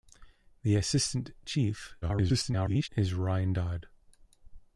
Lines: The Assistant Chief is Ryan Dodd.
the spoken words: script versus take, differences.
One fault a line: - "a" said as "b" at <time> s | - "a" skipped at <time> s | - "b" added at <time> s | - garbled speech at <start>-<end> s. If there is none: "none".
- garbled speech at 2.0-2.9 s